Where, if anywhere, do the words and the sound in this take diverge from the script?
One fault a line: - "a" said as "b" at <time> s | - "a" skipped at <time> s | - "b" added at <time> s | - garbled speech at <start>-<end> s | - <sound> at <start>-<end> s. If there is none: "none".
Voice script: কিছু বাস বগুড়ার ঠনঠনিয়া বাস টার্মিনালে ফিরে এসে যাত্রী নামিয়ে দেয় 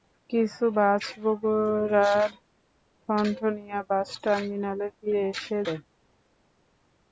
- "যাত্রী নামিয়ে" skipped at 5.6 s